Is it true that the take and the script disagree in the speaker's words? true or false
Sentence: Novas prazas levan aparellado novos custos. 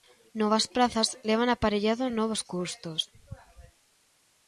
false